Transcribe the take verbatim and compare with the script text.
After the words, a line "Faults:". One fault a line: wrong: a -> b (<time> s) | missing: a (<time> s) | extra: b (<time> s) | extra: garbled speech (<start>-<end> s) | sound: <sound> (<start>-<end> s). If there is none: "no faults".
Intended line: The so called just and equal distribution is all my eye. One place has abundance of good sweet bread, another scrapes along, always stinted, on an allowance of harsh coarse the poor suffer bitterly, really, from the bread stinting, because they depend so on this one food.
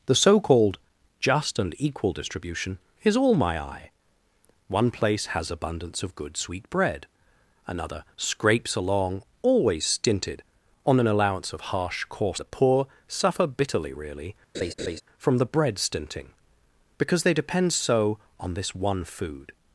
The so called just and equal distribution is all my eye. One place has abundance of good sweet bread, another scrapes along, always stinted, on an allowance of harsh coarse the poor suffer bitterly, really, from the bread stinting, because they depend so on this one food.
Faults:
sound: laugh (14.5-15.0 s)